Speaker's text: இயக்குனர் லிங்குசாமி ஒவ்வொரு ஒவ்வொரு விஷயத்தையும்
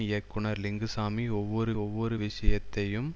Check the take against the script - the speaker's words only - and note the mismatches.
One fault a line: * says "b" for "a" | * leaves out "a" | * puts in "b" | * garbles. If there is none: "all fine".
all fine